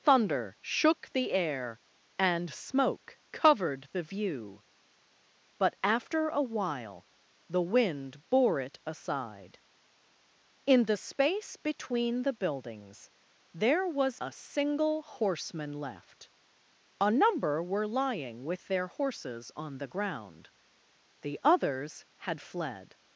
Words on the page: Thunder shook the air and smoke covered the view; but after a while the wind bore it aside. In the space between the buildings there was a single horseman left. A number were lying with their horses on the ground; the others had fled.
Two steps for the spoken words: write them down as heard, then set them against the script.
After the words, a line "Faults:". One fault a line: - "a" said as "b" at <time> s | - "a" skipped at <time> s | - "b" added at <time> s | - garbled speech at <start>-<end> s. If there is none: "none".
Thunder shook the air and smoke covered the view; but after a while the wind bore it aside. In the space between the buildings there was a single horseman left. A number were lying with their horses on the ground; the others had fled.
Faults:
none